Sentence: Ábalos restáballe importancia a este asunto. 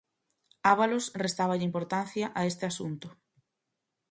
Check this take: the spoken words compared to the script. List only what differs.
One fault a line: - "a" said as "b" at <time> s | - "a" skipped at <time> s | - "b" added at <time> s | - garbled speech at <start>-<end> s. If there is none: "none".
none